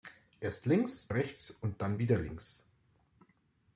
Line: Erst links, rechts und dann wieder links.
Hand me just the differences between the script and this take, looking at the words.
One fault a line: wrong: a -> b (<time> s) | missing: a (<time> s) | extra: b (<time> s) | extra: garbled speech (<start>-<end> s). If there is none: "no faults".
no faults